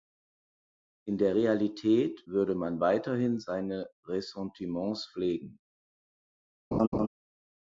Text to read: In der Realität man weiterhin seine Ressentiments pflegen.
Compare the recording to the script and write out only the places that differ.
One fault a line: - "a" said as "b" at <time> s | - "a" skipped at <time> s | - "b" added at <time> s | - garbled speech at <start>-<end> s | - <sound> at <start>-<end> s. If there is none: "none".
- "würde" added at 2.3 s
- laugh at 6.7-7.1 s